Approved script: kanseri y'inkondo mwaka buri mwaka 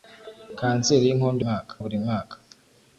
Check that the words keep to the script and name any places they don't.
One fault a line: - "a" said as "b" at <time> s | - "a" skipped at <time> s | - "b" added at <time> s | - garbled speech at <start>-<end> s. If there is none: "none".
none